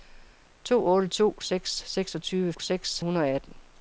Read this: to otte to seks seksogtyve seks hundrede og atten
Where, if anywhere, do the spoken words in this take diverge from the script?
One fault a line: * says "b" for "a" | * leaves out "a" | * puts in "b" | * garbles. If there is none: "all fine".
all fine